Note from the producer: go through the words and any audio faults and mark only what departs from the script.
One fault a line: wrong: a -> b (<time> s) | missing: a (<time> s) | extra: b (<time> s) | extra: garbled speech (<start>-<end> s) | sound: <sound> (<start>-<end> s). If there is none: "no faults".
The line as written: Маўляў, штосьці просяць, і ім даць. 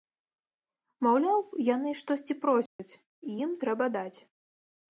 extra: яны (1.8 s)
sound: dropout (2.7-2.8 s)
extra: трэба (3.6 s)